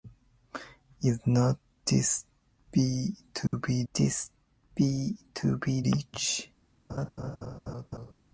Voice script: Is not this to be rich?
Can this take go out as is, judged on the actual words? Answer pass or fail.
fail